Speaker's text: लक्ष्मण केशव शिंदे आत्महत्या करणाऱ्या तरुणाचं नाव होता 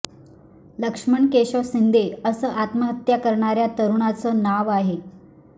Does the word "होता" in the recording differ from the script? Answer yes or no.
yes